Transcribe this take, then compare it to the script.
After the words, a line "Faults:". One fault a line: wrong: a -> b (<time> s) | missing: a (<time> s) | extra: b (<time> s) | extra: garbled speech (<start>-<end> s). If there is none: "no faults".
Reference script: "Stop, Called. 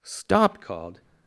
"Stop, Called.
Faults:
no faults